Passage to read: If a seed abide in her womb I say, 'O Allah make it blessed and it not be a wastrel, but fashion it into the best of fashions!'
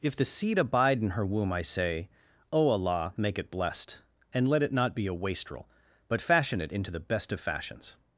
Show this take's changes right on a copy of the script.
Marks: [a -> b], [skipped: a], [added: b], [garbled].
If [a -> the] seed abide in her womb I say, 'O Allah make it blessed and [added: let] it not be a wastrel, but fashion it into the best of fashions!'